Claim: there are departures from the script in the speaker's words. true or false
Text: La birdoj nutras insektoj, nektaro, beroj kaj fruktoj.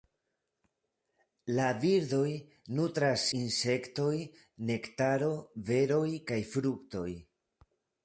false